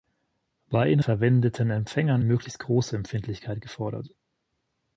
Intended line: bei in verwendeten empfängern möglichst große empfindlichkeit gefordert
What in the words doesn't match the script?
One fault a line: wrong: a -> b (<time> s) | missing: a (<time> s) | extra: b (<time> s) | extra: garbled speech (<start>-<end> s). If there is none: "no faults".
no faults